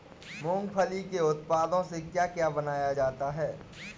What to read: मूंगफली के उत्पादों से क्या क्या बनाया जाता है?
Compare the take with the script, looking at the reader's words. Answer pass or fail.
pass